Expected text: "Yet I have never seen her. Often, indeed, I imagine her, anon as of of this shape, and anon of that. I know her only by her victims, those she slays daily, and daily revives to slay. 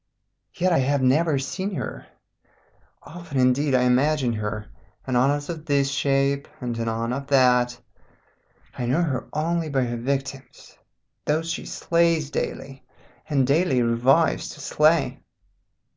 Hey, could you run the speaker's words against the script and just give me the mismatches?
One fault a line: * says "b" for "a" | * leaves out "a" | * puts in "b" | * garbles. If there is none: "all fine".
* leaves out "of"